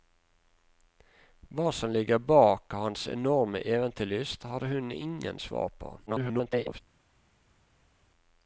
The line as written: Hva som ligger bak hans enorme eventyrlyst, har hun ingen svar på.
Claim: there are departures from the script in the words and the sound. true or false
true